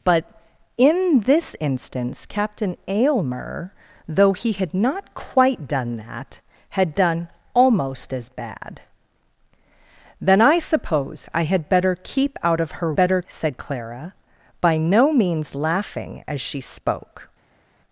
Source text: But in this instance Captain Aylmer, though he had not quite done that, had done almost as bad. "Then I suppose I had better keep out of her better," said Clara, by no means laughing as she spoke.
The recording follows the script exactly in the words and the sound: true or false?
true